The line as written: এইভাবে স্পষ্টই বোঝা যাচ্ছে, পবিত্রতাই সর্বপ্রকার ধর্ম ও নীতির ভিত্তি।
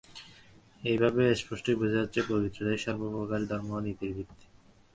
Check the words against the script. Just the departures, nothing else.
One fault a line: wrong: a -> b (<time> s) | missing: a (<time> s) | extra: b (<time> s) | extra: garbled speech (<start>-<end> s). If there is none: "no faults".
no faults